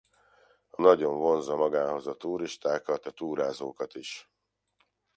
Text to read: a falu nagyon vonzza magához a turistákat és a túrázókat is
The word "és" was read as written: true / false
false